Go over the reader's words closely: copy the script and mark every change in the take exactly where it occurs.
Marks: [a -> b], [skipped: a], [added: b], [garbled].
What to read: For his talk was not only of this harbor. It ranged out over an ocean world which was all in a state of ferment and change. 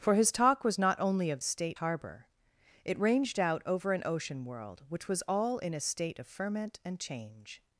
For his talk was not only of [this -> state] harbor. It ranged out over an ocean world which was all in a state of ferment and change.